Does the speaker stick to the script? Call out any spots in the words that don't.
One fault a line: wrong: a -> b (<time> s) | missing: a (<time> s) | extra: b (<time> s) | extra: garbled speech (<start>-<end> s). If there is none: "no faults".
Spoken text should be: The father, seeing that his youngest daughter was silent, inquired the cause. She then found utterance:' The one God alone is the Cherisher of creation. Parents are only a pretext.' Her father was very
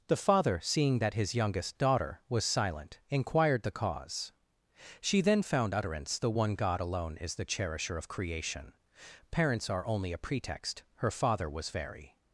no faults